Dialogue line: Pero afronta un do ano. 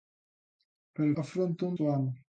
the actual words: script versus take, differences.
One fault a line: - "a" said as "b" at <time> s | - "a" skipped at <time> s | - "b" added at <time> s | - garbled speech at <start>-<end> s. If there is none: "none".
none